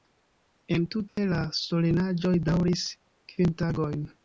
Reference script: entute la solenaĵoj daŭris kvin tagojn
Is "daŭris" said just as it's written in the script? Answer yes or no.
yes